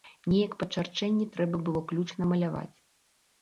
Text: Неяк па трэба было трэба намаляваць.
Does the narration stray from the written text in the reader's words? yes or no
yes